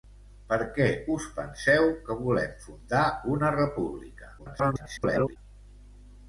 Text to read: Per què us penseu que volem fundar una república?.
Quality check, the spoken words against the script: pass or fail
fail